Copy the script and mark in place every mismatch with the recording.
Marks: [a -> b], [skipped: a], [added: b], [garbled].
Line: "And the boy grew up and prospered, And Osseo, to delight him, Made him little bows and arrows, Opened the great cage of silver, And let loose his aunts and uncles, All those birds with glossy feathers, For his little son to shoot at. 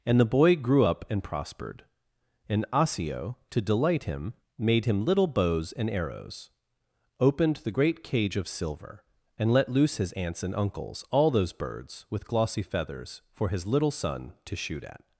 "And the boy grew up and prospered, And Osseo, to delight him, Made him little bows and arrows, Opened the great cage of silver, And let loose his aunts and uncles, All those birds with glossy feathers, For his little son to shoot at.